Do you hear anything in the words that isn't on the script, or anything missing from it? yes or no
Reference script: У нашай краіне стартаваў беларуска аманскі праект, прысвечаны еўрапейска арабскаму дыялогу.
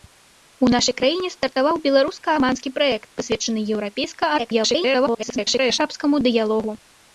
yes